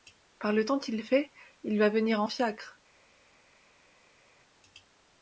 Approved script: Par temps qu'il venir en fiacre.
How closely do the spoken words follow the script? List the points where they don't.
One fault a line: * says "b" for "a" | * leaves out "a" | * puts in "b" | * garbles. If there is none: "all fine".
* puts in "le"
* puts in "fait il va"